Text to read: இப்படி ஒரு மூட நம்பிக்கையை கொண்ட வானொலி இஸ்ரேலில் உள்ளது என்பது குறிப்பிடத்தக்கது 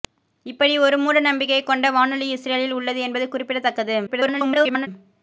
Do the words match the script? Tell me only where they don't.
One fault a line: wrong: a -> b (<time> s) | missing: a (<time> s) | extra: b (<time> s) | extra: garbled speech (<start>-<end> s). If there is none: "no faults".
extra: garbled speech (4.1-4.9 s)